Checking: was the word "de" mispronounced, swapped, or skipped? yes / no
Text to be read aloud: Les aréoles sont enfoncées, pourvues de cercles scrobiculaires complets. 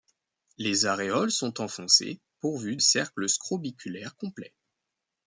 yes